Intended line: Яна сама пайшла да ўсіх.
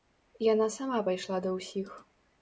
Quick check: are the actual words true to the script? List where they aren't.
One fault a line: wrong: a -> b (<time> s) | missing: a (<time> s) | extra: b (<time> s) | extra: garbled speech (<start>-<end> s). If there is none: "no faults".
no faults